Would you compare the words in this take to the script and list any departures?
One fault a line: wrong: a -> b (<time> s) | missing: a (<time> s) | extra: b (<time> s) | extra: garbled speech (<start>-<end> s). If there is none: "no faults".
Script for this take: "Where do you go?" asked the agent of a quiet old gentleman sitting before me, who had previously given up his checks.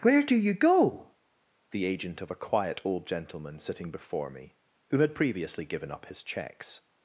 missing: asked (1.1 s)